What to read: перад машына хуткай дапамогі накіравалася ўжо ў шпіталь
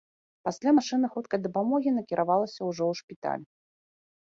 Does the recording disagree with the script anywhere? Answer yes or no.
yes